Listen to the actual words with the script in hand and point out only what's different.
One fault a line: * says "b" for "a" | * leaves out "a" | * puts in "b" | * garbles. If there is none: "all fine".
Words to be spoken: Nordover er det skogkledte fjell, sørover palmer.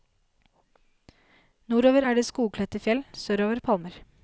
all fine